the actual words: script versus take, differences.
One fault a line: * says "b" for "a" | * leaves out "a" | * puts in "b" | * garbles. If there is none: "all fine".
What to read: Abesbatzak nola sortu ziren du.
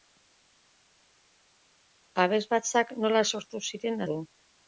all fine